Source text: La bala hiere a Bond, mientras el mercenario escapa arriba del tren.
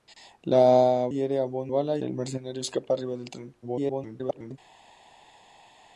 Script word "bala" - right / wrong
wrong